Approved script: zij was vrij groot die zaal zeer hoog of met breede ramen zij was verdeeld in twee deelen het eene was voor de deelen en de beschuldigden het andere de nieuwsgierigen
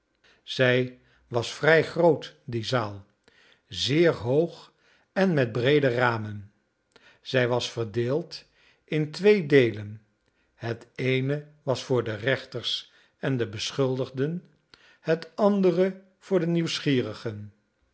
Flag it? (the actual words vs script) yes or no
yes